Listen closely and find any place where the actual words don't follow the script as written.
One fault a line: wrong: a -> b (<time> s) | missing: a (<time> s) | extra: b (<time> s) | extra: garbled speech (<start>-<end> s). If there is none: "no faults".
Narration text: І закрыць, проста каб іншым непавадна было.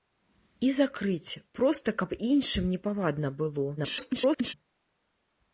extra: garbled speech (3.8-4.5 s)